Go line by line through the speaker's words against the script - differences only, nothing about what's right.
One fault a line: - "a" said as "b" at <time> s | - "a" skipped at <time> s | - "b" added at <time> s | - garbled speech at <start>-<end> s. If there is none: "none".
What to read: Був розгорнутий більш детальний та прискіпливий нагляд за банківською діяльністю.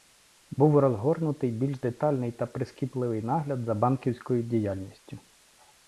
none